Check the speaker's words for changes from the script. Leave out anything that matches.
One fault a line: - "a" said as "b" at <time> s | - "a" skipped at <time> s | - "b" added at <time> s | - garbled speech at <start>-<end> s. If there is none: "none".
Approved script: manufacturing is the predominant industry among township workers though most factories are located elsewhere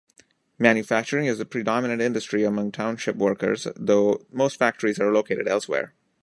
none